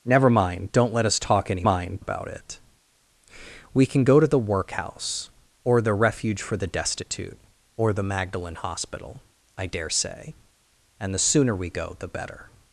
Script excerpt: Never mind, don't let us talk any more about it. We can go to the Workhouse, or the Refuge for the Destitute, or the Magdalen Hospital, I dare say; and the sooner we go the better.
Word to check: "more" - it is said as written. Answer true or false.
false